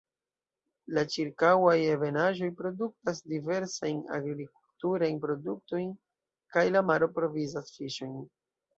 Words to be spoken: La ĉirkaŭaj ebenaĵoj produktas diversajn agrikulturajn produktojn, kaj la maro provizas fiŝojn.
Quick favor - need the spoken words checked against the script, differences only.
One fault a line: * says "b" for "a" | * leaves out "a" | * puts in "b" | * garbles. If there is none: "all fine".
all fine